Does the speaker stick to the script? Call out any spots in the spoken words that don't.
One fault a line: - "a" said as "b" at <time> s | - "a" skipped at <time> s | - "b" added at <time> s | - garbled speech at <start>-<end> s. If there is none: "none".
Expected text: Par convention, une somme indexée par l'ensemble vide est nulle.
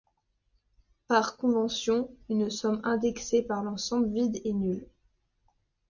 none